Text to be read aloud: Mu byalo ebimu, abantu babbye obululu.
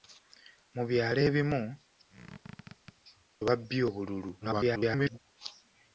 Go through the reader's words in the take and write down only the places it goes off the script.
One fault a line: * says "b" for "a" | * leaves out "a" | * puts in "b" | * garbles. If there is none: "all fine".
* leaves out "abantu"
* garbles